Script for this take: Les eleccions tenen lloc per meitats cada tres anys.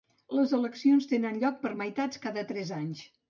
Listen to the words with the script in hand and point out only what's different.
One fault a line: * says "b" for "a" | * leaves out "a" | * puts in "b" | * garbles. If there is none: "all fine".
all fine